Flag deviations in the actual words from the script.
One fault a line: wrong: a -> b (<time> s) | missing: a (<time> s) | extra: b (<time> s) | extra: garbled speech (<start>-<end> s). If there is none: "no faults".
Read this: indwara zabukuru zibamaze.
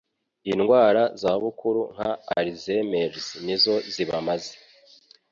extra: nka Alzheimer's nizo (1.9 s)